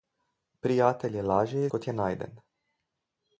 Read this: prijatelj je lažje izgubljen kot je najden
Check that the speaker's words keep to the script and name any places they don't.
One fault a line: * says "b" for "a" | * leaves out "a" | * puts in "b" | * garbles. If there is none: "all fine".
* leaves out "izgubljen"